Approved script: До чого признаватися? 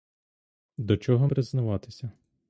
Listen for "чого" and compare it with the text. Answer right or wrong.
right